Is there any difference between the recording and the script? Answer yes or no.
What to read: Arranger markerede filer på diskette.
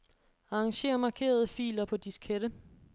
no